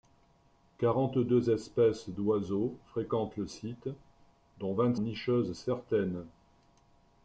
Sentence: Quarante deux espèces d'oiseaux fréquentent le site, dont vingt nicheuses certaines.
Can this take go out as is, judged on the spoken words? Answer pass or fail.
pass